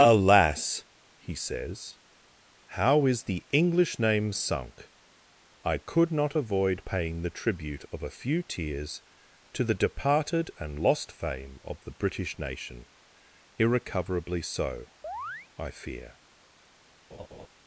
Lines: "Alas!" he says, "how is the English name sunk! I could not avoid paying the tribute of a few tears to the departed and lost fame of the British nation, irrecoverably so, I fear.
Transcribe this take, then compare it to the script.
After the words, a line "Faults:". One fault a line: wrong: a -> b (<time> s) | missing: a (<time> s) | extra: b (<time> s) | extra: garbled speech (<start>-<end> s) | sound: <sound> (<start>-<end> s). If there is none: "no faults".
"Alas!" he says, "how is the English name sunk! I could not avoid paying the tribute of a few tears to the departed and lost fame of the British nation, irrecoverably so, I fear.
Faults:
sound: chirp (15.0-15.5 s)
sound: laugh (17.1-17.5 s)